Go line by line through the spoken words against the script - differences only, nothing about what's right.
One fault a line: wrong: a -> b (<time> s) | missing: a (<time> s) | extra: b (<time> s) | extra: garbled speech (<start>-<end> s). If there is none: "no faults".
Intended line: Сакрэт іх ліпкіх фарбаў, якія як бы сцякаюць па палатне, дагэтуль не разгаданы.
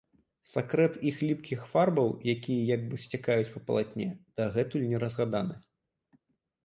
no faults